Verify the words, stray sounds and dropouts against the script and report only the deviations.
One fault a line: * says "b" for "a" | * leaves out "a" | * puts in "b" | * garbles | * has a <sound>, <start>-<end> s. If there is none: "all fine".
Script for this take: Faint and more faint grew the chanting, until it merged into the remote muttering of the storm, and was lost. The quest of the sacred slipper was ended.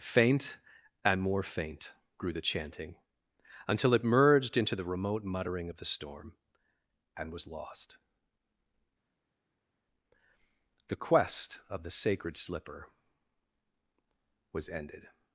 all fine